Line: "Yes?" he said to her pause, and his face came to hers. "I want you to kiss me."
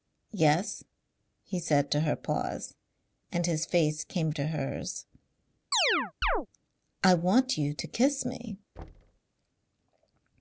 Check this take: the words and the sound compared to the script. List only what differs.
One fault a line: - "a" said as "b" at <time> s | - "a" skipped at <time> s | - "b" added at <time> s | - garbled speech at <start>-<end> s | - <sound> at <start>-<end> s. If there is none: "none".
- chirp at 5.7-6.5 s
- thud at 8.8-9.2 s